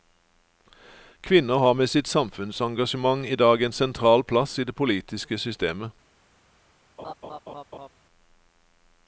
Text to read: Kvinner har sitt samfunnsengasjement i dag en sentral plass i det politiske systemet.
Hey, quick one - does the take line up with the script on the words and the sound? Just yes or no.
no